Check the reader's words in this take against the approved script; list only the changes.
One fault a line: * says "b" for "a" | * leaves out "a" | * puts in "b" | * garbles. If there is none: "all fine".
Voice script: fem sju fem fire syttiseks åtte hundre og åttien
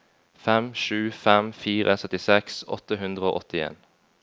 all fine